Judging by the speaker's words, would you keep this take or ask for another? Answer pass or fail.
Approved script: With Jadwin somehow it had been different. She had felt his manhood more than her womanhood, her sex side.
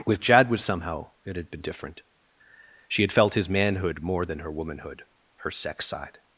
pass